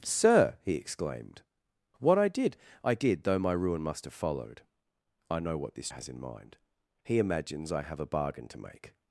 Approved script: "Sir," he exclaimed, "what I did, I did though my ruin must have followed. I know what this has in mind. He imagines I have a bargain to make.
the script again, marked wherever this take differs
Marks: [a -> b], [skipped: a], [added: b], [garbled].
"Sir," he exclaimed, "what I did, I did though my ruin must have followed. I know what this has in mind. He imagines I have a bargain to make.